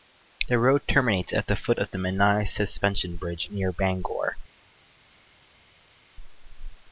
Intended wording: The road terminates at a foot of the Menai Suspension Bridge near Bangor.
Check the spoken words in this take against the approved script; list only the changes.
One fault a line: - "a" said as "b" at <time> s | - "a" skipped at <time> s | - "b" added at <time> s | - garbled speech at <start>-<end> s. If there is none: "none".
- "a" said as "the" at 1.4 s